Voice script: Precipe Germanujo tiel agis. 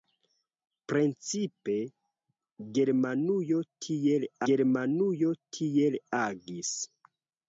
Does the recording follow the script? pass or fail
fail